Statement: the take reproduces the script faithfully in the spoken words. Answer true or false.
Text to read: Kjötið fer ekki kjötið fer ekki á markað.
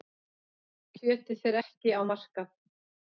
false